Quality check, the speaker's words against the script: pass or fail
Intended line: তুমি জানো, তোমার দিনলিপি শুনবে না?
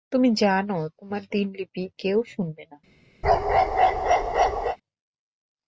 fail